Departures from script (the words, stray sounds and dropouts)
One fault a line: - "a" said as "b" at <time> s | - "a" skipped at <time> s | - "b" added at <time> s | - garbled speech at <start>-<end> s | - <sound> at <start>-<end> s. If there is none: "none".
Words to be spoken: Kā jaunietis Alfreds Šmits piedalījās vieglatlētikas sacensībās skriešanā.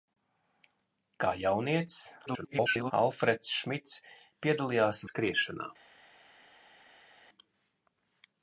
- garbled speech at 2.3-2.9 s
- "vieglatlētikas sacensībās" skipped at 5.0 s